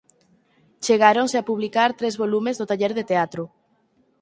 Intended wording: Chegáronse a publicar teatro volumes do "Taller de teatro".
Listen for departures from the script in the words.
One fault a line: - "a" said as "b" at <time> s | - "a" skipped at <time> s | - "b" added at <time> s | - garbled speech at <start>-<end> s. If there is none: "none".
- "teatro" said as "tres" at 2.0 s